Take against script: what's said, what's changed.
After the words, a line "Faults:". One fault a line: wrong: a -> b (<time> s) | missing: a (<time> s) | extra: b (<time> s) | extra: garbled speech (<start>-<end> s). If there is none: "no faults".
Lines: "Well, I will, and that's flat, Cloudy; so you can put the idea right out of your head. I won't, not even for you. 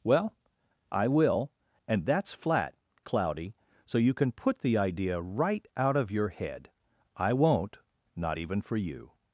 "Well, I will, and that's flat, Cloudy; so you can put the idea right out of your head. I won't, not even for you.
Faults:
no faults